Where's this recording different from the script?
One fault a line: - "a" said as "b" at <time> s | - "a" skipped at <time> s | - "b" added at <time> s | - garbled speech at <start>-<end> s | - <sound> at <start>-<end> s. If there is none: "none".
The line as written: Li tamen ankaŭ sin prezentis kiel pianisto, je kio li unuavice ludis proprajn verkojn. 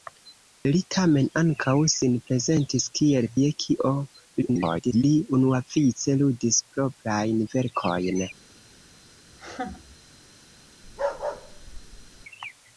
- "pianisto" skipped at 3.3 s
- garbled speech at 4.4-5.0 s
- laugh at 9.3-10.0 s
- bark at 10.8-12.3 s